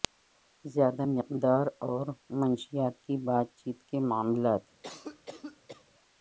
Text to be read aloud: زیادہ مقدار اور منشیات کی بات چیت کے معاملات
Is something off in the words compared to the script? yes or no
no